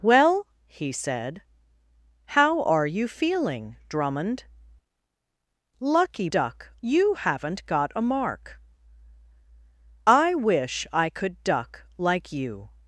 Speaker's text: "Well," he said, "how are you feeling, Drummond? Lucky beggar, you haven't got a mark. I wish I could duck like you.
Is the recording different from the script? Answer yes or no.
yes